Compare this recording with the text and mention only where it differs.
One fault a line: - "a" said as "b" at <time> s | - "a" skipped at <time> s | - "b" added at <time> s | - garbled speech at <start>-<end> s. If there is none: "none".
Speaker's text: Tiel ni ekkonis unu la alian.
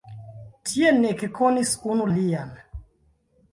- "la" skipped at 2.1 s